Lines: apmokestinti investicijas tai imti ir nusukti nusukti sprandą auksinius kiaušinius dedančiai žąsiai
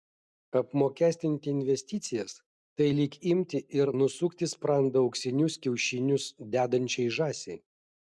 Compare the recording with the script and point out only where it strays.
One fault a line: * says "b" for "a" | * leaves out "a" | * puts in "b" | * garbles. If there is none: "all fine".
* puts in "lyg"
* leaves out "nusukti"